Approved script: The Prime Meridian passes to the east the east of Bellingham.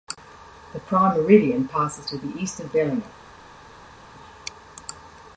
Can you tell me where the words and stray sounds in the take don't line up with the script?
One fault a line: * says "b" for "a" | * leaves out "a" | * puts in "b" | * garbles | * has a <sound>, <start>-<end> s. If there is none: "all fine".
* leaves out "the east"